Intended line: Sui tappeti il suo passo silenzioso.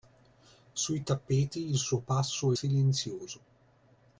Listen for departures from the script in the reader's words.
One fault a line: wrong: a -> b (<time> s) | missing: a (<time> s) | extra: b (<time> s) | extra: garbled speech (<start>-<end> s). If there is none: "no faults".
no faults